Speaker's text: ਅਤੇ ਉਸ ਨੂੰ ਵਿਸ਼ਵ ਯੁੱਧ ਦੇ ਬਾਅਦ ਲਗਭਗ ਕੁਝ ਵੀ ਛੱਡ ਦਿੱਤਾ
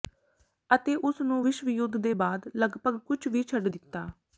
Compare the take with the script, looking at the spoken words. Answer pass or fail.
pass